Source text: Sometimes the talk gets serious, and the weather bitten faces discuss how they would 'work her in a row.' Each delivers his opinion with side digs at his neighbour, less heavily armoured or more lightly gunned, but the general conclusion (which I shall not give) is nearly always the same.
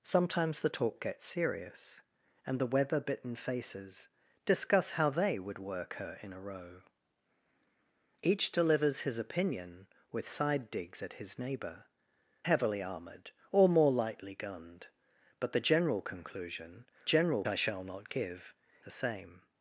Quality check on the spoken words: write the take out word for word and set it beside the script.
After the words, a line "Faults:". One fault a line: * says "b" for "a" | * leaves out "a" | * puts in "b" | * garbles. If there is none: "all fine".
Sometimes the talk gets serious, and the weather bitten faces discuss how they would 'work her in a row.' Each delivers his opinion with side digs at his neighbour, heavily armoured or more lightly gunned, but the general conclusion (general I shall not give) the same.
Faults:
* leaves out "less"
* says "general" for "which"
* leaves out "is nearly always"